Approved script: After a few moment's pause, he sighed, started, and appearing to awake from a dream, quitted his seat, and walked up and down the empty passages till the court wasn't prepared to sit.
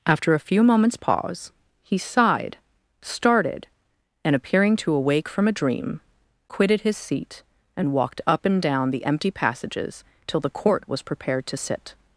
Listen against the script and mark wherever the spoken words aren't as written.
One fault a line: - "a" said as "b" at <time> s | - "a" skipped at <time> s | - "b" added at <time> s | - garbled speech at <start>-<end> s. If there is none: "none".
- "wasn't" said as "was" at 10.9 s